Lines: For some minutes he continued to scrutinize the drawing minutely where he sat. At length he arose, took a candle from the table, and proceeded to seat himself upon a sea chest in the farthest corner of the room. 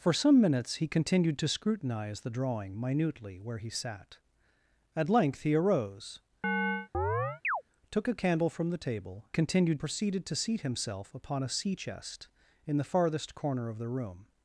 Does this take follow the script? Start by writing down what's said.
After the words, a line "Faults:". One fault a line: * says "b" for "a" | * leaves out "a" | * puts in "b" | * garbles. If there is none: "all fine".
For some minutes he continued to scrutinize the drawing minutely where he sat. At length he arose, took a candle from the table, continued proceeded to seat himself upon a sea chest in the farthest corner of the room.
Faults:
* says "continued" for "and"